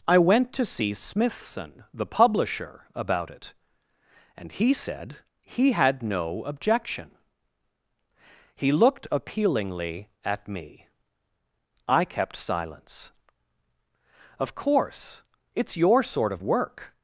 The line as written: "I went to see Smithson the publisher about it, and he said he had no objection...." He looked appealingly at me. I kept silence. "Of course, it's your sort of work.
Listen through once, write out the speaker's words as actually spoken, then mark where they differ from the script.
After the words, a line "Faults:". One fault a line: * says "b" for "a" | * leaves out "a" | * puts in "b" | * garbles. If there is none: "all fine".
"I went to see Smithson the publisher about it, and he said he had no objection...." He looked appealingly at me. I kept silence. "Of course, it's your sort of work.
Faults:
all fine